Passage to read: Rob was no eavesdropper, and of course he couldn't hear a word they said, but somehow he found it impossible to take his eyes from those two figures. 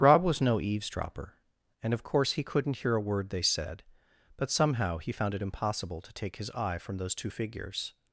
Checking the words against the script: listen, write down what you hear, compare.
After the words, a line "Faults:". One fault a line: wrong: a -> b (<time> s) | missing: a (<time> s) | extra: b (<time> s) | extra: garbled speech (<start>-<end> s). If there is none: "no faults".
Rob was no eavesdropper, and of course he couldn't hear a word they said, but somehow he found it impossible to take his eye from those two figures.
Faults:
wrong: eyes -> eye (6.5 s)